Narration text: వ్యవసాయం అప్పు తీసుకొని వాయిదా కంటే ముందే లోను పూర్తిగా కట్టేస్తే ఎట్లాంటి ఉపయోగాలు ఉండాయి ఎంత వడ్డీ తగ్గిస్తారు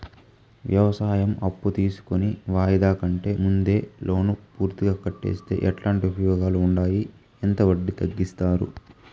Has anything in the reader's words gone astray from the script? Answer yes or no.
no